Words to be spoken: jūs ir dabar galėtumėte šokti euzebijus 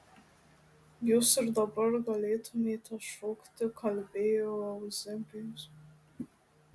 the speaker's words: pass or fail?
fail